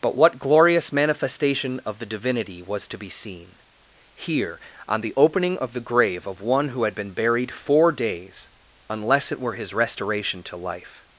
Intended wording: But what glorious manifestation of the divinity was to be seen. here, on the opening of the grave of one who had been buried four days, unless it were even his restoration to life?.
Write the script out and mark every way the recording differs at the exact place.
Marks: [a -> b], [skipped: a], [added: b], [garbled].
But what glorious manifestation of the divinity was to be seen. here, on the opening of the grave of one who had been buried four days, unless it were [skipped: even] his restoration to life?.